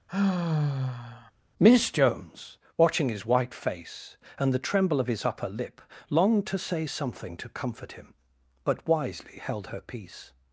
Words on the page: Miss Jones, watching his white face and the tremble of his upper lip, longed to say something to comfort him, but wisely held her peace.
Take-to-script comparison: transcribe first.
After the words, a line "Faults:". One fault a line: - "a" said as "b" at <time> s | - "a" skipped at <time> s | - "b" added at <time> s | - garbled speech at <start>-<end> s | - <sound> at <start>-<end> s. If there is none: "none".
Miss Jones, watching his white face and the tremble of his upper lip, longed to say something to comfort him, but wisely held her peace.
Faults:
- sigh at 0.1-1.3 s